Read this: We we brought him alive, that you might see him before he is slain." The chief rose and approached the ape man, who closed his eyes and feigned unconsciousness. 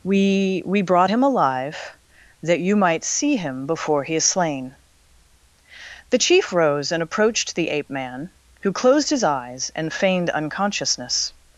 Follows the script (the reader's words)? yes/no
yes